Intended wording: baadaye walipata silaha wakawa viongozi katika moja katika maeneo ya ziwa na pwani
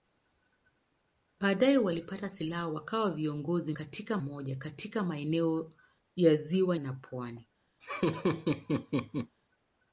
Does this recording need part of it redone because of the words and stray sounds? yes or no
yes